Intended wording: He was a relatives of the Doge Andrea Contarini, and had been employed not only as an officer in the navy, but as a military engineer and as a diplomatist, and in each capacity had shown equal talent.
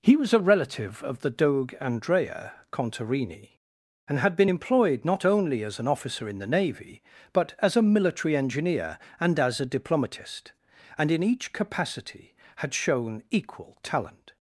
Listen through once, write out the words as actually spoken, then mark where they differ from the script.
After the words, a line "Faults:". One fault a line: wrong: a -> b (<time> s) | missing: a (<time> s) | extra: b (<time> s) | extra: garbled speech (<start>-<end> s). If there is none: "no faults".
He was a relative of the Doge Andrea Contarini, and had been employed not only as an officer in the navy, but as a military engineer and as a diplomatist, and in each capacity had shown equal talent.
Faults:
wrong: relatives -> relative (0.4 s)